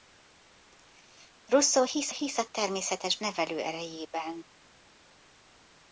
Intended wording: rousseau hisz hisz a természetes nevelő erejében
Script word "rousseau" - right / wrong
right